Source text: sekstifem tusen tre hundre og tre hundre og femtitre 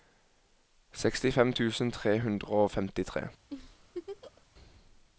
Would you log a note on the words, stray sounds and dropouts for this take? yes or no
yes